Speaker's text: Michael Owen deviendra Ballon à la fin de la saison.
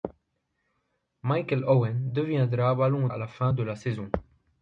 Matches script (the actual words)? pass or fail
pass